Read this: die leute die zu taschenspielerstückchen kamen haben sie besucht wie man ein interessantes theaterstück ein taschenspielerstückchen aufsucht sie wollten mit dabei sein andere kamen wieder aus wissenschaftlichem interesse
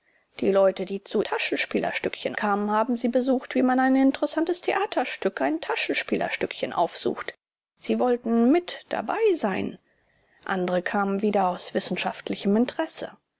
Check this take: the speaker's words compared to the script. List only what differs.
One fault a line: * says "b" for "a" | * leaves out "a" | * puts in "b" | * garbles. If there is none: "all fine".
all fine